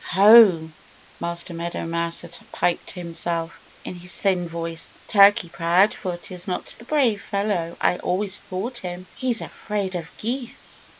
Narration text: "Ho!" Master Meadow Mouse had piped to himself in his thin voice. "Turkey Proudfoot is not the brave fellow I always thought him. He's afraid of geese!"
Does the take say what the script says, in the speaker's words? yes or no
yes